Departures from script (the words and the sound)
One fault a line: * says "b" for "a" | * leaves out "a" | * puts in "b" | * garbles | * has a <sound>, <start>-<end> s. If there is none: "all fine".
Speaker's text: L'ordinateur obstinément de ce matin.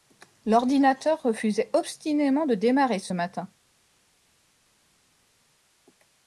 * puts in "refusait"
* puts in "démarrer"